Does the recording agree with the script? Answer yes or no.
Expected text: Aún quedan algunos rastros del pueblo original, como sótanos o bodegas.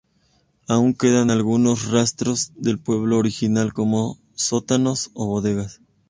yes